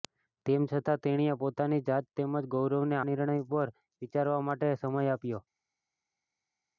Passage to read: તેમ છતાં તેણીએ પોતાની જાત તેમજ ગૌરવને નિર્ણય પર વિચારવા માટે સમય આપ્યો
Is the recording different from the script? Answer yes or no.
no